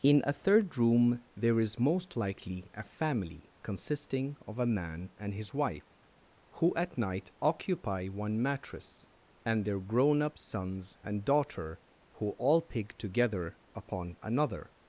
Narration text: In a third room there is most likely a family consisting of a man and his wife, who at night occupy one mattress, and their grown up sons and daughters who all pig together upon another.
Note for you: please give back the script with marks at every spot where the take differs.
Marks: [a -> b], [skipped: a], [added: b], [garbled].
In a third room there is most likely a family consisting of a man and his wife, who at night occupy one mattress, and their grown up sons and [daughters -> daughter] who all pig together upon another.